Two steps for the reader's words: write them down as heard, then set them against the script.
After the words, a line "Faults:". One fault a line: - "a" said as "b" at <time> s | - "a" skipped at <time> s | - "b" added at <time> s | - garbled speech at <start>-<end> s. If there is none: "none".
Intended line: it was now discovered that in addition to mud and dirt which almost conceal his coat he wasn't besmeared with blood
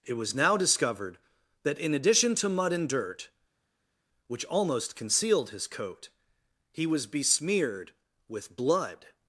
it was now discovered that in addition to mud and dirt which almost concealed his coat he was besmeared with blood
Faults:
- "conceal" said as "concealed" at 5.0 s
- "wasn't" said as "was" at 6.9 s